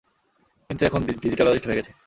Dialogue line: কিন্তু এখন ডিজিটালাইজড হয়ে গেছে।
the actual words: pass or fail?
pass